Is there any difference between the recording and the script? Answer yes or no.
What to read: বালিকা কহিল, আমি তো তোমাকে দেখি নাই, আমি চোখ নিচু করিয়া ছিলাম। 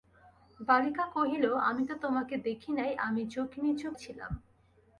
yes